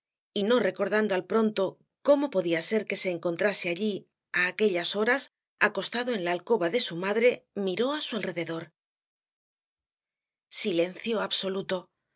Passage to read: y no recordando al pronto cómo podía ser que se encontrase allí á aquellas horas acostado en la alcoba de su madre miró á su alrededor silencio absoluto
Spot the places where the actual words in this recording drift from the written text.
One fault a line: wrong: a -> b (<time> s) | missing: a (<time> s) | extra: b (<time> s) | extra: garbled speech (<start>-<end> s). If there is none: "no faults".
no faults